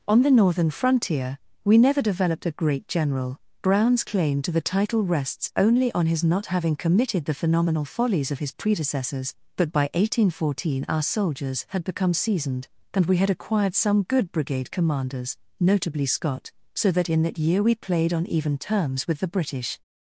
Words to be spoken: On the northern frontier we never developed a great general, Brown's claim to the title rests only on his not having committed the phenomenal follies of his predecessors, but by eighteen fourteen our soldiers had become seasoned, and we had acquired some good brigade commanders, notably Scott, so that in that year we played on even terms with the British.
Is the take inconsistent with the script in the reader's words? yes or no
no